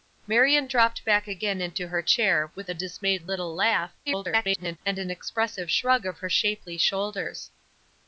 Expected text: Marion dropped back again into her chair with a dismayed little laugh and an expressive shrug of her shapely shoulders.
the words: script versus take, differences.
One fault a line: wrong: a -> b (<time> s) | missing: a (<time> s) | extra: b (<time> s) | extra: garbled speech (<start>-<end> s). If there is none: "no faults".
extra: garbled speech (4.1-4.8 s)